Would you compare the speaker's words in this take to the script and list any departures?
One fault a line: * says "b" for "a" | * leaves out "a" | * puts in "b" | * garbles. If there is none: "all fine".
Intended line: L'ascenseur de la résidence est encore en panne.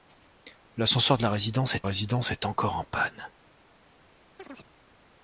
* puts in "résidence est"